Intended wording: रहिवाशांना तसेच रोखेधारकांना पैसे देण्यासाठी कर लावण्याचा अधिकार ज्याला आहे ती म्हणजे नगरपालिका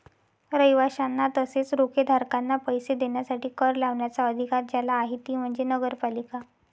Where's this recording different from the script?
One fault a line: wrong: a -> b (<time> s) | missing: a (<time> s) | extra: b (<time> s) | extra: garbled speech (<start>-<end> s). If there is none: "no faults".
no faults